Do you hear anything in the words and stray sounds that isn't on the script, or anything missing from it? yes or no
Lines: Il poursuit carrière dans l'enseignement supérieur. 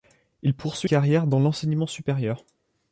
no